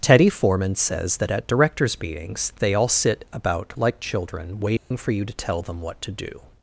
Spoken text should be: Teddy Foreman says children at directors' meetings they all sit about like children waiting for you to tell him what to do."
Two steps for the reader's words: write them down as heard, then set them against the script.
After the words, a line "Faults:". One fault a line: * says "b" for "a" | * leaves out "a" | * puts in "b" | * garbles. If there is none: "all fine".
Teddy Foreman says that at directors' meetings they all sit about like children waiting for you to tell them what to do."
Faults:
* says "that" for "children"
* says "them" for "him"